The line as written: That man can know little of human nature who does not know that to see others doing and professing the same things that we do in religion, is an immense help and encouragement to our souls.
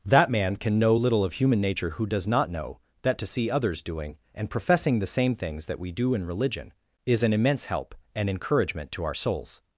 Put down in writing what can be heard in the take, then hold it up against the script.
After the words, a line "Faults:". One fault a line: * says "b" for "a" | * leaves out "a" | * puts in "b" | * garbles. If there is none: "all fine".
That man can know little of human nature who does not know that to see others doing and professing the same things that we do in religion, is an immense help and encouragement to our souls.
Faults:
all fine